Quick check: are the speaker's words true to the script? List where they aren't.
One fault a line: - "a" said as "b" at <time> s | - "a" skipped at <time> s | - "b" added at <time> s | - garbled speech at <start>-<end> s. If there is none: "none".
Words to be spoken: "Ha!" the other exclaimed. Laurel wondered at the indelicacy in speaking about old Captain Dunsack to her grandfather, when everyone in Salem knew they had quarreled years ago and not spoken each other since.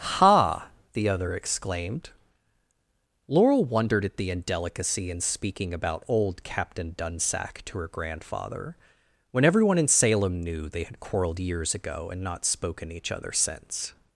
none